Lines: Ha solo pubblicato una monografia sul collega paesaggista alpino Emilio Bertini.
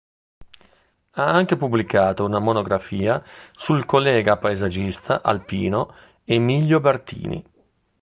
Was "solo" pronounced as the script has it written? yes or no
no